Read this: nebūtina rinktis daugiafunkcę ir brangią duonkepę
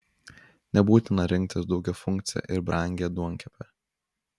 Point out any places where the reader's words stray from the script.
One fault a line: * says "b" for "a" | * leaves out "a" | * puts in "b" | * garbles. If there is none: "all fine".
all fine